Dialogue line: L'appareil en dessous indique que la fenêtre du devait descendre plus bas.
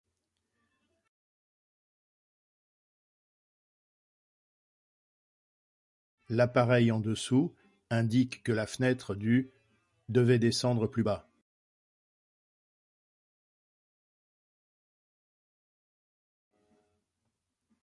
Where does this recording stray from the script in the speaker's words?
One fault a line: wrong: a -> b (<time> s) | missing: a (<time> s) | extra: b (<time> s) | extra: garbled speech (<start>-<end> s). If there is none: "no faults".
no faults